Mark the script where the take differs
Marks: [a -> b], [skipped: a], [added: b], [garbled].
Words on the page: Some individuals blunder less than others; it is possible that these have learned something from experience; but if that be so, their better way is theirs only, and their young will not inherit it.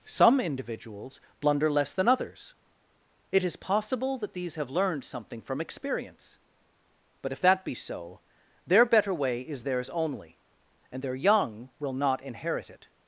Some individuals blunder less than others; it is possible that these have learned something from experience; but if that be so, their better way is theirs only, and their young will not inherit it.